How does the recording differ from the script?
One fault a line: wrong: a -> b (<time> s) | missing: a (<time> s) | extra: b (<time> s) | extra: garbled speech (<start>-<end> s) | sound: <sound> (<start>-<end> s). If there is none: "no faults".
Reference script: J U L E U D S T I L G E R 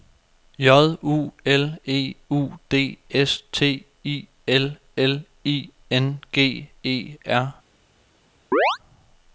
extra: L I N (5.0 s)
sound: chirp (8.5-8.8 s)